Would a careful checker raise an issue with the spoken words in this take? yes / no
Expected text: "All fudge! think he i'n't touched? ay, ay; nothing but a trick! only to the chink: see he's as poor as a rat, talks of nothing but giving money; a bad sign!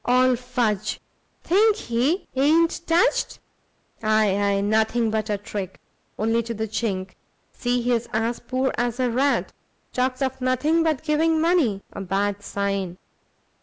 no